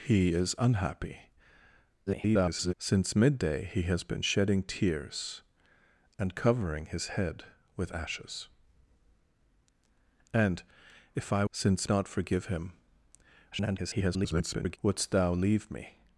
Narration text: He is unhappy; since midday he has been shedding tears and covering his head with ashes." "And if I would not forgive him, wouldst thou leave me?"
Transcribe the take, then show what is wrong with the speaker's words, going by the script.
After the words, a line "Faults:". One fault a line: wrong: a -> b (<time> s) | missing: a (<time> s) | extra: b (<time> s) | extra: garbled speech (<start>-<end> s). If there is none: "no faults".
He is unhappy; [garbled] since midday he has been shedding tears and covering his head with ashes." "And if I since not forgive him, [garbled] wouldst thou leave me?"
Faults:
extra: garbled speech (2.1-2.7 s)
wrong: would -> since (11.5 s)
extra: garbled speech (13.5-14.8 s)